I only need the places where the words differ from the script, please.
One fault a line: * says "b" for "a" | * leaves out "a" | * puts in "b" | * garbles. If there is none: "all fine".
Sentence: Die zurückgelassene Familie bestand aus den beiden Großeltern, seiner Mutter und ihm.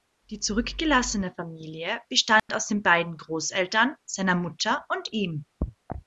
all fine